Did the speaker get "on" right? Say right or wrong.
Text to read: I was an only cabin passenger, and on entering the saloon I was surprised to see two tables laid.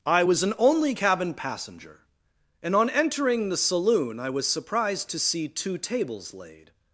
right